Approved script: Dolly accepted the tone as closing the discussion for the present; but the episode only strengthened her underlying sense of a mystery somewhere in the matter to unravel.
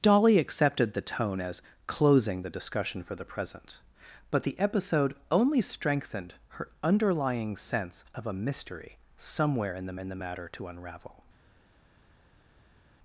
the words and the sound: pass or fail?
fail